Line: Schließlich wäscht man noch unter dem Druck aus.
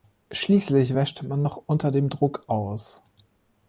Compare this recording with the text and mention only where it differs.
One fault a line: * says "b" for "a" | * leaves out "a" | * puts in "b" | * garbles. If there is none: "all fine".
all fine